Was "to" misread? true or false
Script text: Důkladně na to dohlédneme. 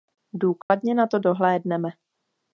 false